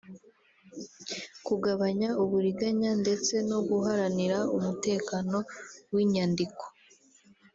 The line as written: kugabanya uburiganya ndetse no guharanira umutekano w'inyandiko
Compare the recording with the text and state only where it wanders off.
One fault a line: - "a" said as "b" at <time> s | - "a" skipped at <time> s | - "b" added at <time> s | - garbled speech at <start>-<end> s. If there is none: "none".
none